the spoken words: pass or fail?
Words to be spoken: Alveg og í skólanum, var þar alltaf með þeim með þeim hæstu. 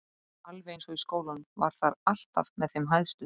fail